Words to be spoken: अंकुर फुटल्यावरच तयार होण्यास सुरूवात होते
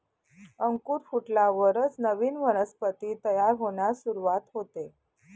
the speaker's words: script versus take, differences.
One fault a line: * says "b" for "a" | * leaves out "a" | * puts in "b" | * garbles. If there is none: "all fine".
* puts in "नवीन वनस्पती"